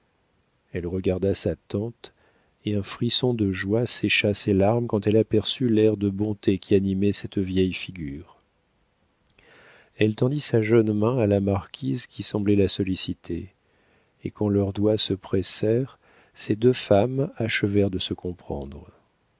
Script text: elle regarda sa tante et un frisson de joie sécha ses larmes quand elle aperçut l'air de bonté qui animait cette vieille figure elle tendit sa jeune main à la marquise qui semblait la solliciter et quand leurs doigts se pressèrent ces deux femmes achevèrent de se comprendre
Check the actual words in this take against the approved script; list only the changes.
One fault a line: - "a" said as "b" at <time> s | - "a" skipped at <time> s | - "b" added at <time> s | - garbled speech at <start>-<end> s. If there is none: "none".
none